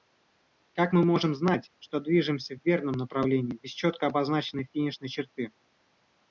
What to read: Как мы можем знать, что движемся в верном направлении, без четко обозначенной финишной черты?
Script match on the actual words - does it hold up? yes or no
yes